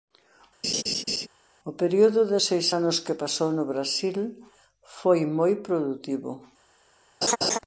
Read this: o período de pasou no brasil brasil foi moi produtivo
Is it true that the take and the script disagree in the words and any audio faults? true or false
true